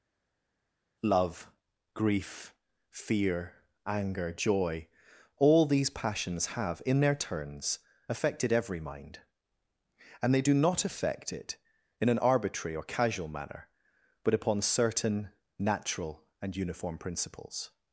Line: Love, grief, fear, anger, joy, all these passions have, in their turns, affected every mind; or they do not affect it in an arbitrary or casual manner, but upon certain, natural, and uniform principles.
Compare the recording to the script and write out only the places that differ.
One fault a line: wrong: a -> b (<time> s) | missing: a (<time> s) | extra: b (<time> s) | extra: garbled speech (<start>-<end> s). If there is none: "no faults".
wrong: or -> and (10.2 s)